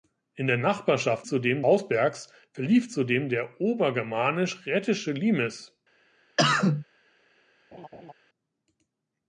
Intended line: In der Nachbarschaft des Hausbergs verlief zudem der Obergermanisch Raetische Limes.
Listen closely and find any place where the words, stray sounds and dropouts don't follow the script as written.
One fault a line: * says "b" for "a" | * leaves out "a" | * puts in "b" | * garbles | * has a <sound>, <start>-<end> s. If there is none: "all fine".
* says "zudem" for "des"
* has a cough, 6.4-6.8 s
* has a laugh, 7.7-8.1 s